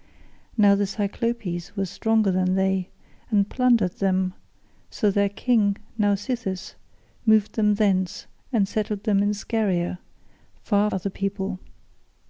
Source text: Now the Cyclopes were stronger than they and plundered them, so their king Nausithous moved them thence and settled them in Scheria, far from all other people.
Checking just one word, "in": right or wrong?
right